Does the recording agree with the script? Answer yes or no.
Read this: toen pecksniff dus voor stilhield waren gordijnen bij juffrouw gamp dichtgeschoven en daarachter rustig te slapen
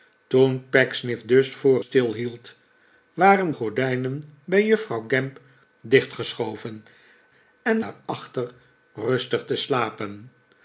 yes